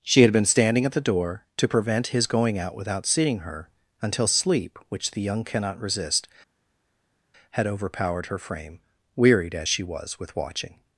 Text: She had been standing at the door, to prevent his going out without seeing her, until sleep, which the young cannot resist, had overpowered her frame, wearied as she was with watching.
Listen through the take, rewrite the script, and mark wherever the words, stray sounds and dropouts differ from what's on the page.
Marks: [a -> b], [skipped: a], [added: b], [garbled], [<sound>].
She had been standing at the door, to prevent his going out without seeing her, until sleep, which the young cannot resist, had overpowered her frame, wearied as she was with watching.